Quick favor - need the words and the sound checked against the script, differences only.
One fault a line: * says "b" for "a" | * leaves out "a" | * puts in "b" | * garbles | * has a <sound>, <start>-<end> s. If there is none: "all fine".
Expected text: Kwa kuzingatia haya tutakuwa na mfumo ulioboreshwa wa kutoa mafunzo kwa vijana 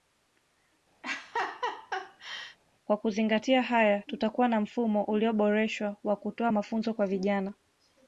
* has a laugh, 1.0-2.6 s